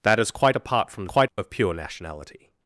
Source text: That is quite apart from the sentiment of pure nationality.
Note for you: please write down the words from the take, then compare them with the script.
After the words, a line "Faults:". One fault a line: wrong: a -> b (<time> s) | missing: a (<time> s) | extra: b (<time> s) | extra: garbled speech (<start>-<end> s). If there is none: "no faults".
That is quite apart from the quite of pure nationality.
Faults:
wrong: sentiment -> quite (1.0 s)